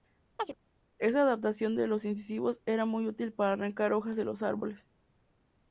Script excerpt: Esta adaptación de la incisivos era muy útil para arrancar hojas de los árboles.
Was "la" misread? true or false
true